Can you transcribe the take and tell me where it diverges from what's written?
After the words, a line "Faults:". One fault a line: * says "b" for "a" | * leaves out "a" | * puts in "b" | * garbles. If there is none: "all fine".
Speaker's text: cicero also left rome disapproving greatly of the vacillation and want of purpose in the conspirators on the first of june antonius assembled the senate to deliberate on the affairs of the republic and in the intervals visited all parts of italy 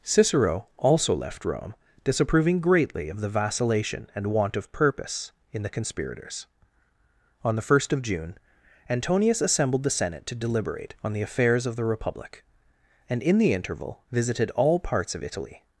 cicero also left rome disapproving greatly of the vacillation and want of purpose in the conspirators on the first of june antonius assembled the senate to deliberate on the affairs of the republic and in the interval visited all parts of italy
Faults:
* says "interval" for "intervals"